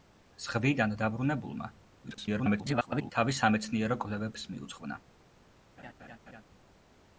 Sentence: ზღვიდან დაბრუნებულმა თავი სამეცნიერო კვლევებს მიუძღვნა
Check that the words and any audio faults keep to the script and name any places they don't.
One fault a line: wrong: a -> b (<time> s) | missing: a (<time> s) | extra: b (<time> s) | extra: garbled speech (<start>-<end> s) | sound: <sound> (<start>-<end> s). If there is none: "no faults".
extra: garbled speech (2.0-3.1 s)
sound: laugh (5.8-6.4 s)